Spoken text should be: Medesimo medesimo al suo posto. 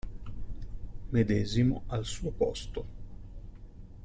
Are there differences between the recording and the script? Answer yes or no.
yes